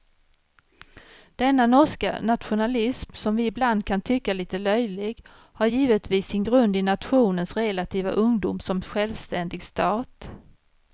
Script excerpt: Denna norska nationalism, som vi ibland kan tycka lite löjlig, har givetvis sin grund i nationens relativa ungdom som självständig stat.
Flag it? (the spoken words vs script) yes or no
no